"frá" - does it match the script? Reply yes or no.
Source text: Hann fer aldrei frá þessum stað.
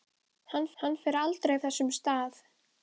no